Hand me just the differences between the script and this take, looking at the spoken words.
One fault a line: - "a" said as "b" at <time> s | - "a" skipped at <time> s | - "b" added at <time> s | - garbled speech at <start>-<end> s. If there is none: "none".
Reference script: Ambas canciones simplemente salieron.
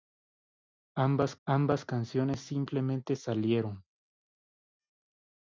- "ambas" added at 1.5 s